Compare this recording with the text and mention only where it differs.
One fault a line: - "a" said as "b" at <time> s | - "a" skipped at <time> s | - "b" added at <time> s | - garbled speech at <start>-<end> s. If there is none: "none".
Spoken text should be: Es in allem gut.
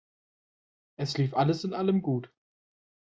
- "lief alles" added at 1.2 s